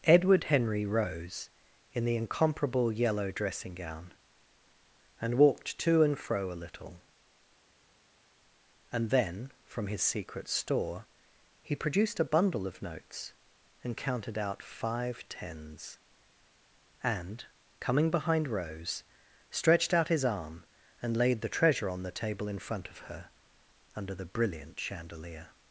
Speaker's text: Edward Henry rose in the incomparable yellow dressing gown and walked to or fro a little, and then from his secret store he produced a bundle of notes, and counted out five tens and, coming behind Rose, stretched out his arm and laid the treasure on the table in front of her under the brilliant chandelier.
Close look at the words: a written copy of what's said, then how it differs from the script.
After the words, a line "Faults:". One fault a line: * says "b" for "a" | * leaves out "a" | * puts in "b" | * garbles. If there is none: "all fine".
Edward Henry rose in the incomparable yellow dressing gown and walked to and fro a little, and then from his secret store he produced a bundle of notes, and counted out five tens and, coming behind Rose, stretched out his arm and laid the treasure on the table in front of her under the brilliant chandelier.
Faults:
* says "and" for "or"